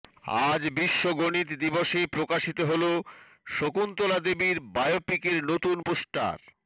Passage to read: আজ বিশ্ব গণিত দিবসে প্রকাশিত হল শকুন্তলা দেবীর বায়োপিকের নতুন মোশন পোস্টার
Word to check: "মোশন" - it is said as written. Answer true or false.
false